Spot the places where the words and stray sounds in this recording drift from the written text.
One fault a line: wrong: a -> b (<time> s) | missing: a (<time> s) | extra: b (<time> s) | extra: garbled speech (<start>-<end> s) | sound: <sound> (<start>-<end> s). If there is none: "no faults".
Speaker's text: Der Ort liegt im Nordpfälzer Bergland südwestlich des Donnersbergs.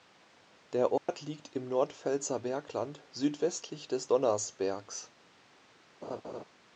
sound: dropout (1.0-1.1 s)
sound: laugh (6.0-6.4 s)